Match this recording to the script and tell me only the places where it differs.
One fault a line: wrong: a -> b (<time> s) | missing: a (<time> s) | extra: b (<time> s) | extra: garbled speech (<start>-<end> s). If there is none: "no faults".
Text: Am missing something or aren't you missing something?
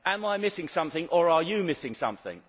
extra: I (0.2 s)
wrong: aren't -> are (1.3 s)